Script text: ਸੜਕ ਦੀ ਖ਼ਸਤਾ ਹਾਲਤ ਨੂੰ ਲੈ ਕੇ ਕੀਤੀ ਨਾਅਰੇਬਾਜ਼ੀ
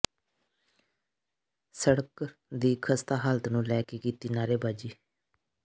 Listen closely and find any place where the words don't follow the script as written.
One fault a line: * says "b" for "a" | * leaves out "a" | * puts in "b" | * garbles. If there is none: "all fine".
all fine